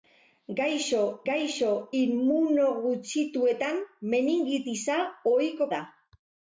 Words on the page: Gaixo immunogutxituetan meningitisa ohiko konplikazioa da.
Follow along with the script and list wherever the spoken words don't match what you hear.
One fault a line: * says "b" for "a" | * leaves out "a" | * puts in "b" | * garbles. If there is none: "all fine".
* puts in "gaixo"
* leaves out "konplikazioa"